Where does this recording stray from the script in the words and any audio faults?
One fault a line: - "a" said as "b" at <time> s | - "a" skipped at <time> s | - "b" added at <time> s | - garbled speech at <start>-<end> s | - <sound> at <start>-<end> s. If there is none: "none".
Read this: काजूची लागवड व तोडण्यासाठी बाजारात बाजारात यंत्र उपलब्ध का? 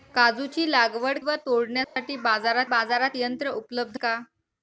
- dropout at 1.8-2.0 s